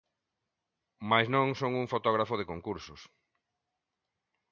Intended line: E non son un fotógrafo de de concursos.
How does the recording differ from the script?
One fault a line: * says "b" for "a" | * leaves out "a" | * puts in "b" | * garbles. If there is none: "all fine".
* says "Mais" for "E"
* leaves out "de"